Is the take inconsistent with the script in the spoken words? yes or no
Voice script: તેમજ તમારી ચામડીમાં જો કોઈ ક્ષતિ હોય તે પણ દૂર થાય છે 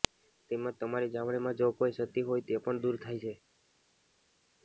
no